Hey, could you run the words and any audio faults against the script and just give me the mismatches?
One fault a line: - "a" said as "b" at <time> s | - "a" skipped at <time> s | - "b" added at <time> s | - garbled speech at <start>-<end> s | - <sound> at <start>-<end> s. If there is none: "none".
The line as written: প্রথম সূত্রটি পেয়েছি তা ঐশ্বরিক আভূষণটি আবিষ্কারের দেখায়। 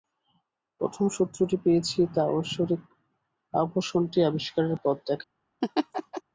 - "পথ" added at 4.8 s
- laugh at 5.6-6.2 s